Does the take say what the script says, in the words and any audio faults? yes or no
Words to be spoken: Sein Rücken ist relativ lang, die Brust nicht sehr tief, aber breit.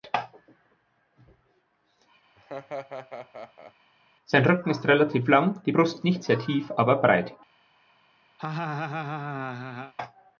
no